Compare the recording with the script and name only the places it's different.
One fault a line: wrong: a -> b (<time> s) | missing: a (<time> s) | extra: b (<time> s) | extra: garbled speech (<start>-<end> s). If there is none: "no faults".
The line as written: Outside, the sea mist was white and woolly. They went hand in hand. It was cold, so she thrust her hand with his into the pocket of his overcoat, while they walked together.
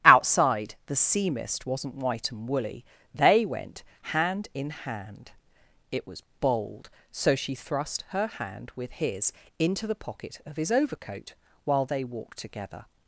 wrong: was -> wasn't (1.6 s)
wrong: cold -> bold (6.4 s)